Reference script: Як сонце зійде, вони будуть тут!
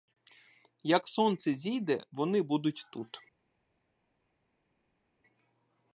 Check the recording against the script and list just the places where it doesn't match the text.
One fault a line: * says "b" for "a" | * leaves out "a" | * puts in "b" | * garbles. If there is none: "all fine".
all fine